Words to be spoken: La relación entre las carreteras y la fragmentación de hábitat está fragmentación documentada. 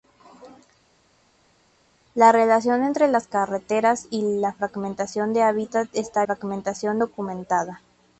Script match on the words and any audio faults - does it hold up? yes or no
yes